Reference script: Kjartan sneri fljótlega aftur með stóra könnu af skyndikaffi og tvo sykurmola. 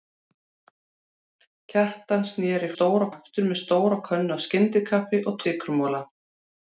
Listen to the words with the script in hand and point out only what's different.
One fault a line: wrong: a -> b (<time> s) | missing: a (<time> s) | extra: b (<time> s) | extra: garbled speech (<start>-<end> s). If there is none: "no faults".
wrong: fljótlega -> stóra (2.7 s)
missing: tvo (5.4 s)